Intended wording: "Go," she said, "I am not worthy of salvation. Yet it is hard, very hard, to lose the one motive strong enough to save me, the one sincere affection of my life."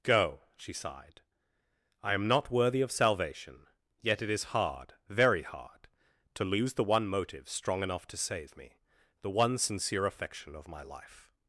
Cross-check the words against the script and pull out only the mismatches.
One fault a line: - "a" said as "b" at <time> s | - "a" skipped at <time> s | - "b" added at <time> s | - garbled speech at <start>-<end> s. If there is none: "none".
- "said" said as "sighed" at 0.7 s